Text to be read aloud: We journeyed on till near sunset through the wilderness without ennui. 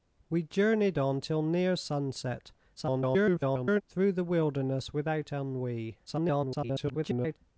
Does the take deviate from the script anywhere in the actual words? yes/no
yes